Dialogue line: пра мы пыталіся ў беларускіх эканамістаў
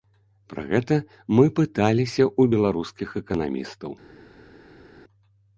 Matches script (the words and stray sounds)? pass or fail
fail